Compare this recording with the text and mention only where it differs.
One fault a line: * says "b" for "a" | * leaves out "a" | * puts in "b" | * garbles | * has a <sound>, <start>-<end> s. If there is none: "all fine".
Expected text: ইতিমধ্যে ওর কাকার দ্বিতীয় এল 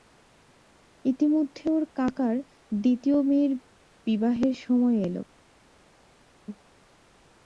* puts in "মেয়ের বিবাহের সময়"